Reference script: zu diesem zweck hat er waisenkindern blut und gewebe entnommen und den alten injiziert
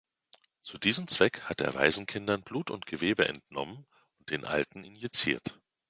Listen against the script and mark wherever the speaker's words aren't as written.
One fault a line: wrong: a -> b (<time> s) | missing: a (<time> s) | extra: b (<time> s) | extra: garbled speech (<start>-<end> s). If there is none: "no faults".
no faults